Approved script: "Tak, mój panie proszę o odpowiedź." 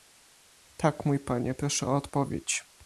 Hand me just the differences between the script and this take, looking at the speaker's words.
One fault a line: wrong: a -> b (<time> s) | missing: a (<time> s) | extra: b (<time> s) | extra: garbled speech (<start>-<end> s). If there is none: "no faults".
no faults